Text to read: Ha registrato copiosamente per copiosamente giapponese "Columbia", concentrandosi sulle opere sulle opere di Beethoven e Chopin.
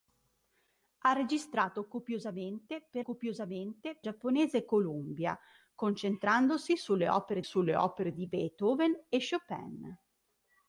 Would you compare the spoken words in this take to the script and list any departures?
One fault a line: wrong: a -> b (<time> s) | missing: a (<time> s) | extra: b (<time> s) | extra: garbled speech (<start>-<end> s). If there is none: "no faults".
no faults